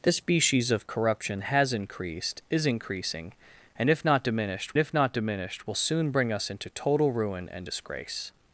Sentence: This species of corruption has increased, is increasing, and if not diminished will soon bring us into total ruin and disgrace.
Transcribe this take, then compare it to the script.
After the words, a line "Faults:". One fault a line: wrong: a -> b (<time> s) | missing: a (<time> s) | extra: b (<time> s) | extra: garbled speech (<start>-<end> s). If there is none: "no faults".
This species of corruption has increased, is increasing, and if not diminished if not diminished will soon bring us into total ruin and disgrace.
Faults:
extra: if not diminished (4.8 s)